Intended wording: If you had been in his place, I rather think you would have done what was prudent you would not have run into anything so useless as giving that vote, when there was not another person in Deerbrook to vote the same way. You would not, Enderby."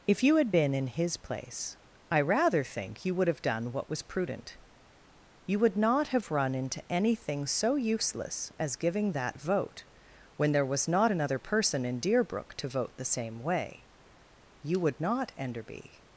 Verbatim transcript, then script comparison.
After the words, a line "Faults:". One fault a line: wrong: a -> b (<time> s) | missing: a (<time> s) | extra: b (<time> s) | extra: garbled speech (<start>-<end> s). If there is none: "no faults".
If you had been in his place, I rather think you would have done what was prudent you would not have run into anything so useless as giving that vote, when there was not another person in Deerbrook to vote the same way. You would not, Enderby."
Faults:
no faults